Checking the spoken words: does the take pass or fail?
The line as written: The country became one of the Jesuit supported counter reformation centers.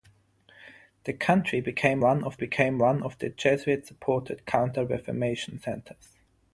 fail